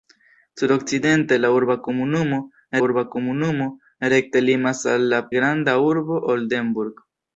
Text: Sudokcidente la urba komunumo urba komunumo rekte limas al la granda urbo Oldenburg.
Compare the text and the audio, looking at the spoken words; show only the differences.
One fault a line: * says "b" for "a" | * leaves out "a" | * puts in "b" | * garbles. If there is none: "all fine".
all fine